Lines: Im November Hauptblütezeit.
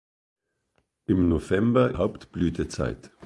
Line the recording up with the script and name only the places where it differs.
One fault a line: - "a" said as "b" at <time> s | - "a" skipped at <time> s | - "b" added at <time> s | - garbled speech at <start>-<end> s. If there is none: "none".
none